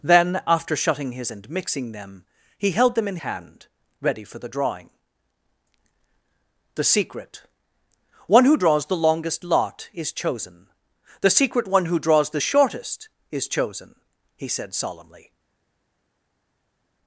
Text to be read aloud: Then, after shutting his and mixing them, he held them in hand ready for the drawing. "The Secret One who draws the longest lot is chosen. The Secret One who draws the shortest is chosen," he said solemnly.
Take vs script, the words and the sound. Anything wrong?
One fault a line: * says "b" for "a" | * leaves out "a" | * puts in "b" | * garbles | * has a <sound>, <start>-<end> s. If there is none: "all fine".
all fine